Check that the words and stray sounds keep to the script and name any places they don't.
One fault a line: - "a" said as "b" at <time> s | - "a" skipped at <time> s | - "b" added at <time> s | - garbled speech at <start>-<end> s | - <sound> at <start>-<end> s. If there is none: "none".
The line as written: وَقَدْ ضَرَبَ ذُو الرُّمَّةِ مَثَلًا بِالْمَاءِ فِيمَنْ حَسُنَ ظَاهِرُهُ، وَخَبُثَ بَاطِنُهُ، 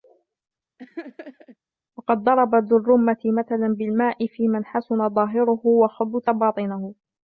- laugh at 0.8-1.6 s